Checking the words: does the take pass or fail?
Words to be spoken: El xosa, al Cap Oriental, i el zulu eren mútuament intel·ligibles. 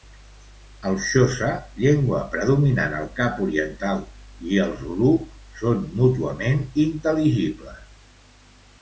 fail